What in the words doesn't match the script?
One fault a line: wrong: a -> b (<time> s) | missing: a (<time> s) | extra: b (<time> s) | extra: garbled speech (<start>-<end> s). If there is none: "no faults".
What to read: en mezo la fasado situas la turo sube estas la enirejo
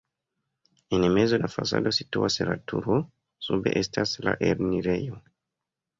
no faults